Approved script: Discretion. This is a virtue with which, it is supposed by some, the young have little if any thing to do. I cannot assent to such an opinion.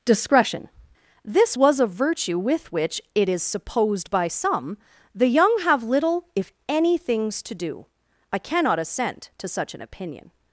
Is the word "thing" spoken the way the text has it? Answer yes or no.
no